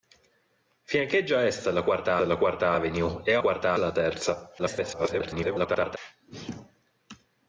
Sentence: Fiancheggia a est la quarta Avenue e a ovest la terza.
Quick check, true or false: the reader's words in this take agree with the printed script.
false